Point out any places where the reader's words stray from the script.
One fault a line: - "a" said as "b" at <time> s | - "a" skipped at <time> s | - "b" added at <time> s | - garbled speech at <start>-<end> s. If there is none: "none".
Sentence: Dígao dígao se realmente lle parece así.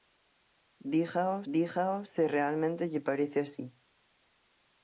none